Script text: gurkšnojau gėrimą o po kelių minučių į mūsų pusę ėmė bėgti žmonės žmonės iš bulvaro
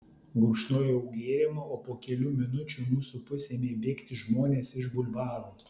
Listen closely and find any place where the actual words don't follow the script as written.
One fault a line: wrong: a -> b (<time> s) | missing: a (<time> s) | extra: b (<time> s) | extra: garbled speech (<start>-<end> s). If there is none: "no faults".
missing: žmonės (4.7 s)